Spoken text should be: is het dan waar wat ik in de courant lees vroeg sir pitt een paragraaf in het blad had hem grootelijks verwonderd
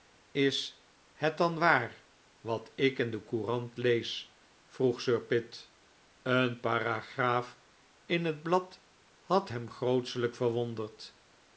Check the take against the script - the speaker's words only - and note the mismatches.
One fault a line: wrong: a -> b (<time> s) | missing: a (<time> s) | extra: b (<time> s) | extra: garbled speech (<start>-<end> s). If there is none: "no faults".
no faults